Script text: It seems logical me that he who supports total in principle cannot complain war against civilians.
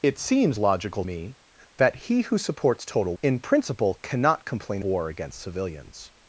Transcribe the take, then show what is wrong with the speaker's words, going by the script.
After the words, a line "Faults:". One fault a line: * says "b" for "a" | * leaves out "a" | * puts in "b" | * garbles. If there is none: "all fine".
It seems logical me that he who supports total in principle cannot complain war against civilians.
Faults:
all fine